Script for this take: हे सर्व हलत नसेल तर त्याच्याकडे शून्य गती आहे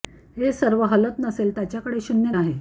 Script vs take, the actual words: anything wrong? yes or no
yes